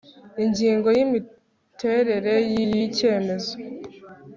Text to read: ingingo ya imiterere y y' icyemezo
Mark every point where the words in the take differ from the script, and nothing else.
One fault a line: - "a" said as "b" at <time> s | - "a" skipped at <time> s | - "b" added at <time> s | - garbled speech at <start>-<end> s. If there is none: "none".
none